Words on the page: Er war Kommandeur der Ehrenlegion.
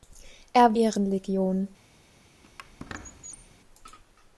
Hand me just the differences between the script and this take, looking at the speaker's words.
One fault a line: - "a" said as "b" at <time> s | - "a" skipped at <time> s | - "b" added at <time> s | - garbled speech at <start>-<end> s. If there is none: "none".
- "war Kommandeur der" skipped at 0.8 s